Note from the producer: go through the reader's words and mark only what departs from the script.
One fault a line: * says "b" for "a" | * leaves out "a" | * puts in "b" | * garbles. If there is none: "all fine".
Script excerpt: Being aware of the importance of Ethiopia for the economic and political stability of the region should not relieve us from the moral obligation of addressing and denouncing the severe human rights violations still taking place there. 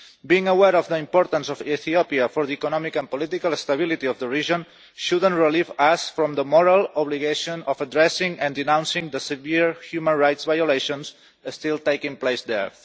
all fine